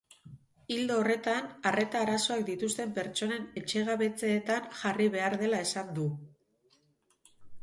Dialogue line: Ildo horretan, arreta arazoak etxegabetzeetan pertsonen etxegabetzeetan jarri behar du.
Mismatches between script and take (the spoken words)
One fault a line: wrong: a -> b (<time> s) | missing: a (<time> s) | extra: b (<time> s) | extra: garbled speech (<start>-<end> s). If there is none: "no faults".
wrong: etxegabetzeetan -> dituzten (2.5 s)
extra: dela esan (5.4 s)